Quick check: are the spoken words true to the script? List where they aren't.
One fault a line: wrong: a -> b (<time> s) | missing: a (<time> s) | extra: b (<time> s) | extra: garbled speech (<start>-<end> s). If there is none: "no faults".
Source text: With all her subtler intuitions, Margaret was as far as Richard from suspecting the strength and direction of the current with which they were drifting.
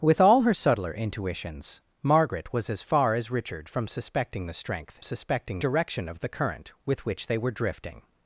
wrong: and -> suspecting (5.0 s)